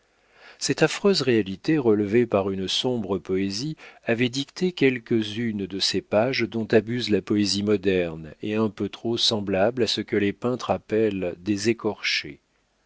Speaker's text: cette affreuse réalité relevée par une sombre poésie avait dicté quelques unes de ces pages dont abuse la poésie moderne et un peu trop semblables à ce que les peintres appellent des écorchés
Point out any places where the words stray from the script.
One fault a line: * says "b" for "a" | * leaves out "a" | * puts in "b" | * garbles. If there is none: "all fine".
all fine